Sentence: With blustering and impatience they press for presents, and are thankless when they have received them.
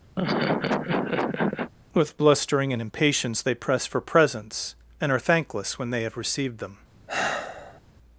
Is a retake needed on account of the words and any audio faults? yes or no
yes